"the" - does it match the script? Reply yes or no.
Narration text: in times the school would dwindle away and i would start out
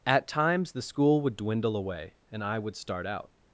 yes